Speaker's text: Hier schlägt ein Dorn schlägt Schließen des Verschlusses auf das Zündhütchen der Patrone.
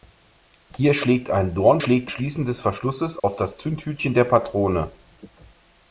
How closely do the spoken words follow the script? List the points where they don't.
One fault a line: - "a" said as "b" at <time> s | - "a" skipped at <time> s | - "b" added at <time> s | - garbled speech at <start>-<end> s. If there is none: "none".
none